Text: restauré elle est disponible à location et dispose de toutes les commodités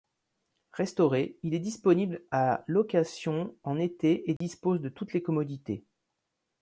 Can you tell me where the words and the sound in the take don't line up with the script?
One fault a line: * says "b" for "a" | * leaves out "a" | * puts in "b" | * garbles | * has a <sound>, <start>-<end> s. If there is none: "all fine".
* says "il" for "elle"
* puts in "en été"
* has a dropout, 4.4-4.4 s